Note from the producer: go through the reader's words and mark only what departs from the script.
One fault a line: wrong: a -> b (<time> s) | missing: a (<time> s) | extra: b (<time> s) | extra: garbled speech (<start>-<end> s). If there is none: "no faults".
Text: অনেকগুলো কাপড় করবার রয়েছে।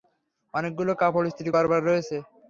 extra: ইস্ত্রি (1.3 s)